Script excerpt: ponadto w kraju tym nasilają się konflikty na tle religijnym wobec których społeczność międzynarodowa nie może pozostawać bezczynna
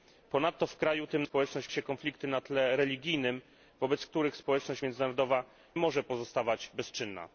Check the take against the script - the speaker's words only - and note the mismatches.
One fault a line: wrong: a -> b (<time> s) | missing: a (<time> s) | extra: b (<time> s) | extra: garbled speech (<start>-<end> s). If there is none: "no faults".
wrong: nasilają -> społeczność (1.2 s)
missing: nie (5.4 s)